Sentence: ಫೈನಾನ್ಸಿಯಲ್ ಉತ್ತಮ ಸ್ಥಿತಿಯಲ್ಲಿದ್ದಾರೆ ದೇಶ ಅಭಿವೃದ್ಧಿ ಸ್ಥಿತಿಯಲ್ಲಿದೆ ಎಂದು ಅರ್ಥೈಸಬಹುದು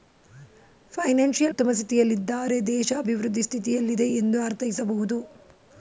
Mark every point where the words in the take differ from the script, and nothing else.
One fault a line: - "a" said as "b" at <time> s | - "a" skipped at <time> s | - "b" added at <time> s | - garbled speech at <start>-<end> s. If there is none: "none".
none